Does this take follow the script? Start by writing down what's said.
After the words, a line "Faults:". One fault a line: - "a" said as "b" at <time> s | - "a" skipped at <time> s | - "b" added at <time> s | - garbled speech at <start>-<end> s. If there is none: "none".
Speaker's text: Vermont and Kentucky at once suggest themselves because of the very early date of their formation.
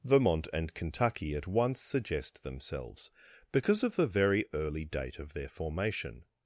Vermont and Kentucky at once suggest themselves because of the very early date of their formation.
Faults:
none